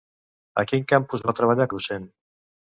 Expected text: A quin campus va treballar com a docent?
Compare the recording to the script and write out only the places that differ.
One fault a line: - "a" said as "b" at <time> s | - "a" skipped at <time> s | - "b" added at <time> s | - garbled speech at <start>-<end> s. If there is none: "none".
- "com" skipped at 1.7 s